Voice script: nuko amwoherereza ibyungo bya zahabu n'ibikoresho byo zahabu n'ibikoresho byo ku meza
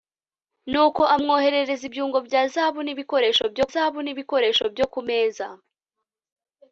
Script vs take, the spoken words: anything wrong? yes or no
no